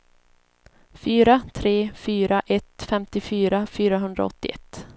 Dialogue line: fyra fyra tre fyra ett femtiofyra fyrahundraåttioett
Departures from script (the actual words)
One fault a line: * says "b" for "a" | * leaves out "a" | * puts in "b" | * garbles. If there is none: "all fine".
* leaves out "fyra"